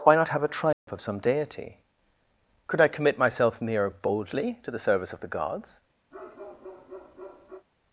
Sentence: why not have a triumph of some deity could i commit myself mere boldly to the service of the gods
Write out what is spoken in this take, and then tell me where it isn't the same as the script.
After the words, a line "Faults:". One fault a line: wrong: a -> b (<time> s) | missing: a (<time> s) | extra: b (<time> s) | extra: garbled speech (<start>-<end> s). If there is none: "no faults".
why not have a triumph of some deity could i commit myself mere boldly to the service of the gods
Faults:
no faults